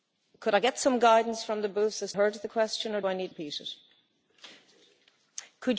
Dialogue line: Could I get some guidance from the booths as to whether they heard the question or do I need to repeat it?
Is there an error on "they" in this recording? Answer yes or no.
yes